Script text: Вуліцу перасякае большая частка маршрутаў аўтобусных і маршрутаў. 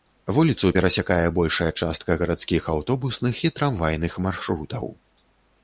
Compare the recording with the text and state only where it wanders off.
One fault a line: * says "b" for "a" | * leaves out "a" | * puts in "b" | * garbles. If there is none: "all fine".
* says "гарадскіх" for "маршрутаў"
* puts in "трамвайных"